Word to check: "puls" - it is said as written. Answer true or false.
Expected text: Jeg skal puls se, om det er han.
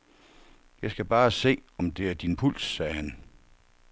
false